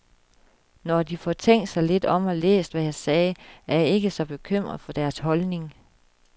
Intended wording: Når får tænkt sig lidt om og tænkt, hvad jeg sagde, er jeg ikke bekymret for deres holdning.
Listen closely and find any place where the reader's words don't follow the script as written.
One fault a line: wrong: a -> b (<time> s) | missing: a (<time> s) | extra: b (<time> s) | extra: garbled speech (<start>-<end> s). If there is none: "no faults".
extra: de (1.0 s)
wrong: tænkt -> læst (2.4 s)
extra: så (4.1 s)